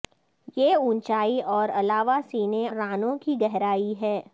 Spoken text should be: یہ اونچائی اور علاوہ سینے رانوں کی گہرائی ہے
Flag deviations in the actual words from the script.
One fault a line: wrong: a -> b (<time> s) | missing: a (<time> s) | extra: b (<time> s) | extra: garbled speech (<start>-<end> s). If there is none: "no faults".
no faults